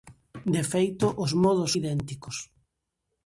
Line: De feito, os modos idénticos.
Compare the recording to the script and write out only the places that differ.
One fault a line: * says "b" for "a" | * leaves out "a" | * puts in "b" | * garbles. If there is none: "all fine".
all fine